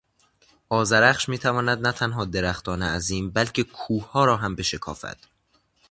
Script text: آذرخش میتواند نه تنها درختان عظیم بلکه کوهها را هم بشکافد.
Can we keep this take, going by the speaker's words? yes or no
yes